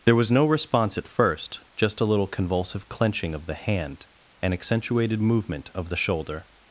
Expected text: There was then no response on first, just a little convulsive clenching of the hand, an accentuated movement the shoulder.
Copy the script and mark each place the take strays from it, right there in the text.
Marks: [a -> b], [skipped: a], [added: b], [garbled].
There was [skipped: then] no response [on -> at] first, just a little convulsive clenching of the hand, an accentuated movement [added: of] the shoulder.